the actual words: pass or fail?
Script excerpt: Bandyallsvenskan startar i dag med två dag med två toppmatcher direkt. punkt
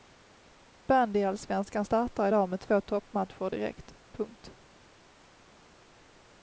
fail